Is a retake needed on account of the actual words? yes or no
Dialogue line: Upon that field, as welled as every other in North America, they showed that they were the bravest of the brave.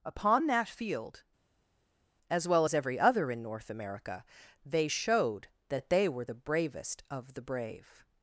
yes